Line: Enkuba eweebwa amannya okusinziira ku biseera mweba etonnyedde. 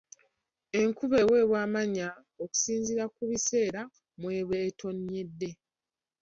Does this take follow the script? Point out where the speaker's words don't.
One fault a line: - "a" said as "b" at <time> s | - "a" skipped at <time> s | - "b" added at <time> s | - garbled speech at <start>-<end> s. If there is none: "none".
none